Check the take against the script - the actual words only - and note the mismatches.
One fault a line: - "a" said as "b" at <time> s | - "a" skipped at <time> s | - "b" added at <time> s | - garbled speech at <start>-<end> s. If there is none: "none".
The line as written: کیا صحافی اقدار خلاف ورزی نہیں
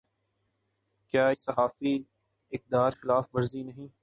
none